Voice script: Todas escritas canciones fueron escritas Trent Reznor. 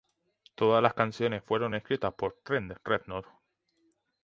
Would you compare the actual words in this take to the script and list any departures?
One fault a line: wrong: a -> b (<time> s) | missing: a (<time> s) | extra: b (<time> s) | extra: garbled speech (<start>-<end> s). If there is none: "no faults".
wrong: escritas -> las (0.8 s)
extra: por (2.1 s)